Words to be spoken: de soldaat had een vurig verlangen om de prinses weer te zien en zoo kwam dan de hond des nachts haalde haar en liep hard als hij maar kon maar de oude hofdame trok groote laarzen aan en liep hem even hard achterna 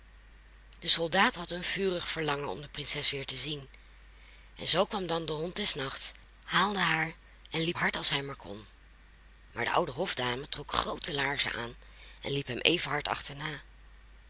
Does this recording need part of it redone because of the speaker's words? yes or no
no